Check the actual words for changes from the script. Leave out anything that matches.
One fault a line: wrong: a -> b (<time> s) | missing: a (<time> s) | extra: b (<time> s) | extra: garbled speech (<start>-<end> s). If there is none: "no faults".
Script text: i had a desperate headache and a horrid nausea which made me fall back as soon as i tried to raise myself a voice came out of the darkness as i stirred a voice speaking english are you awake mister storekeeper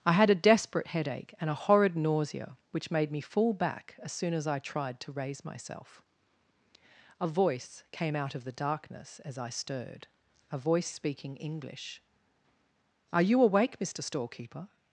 no faults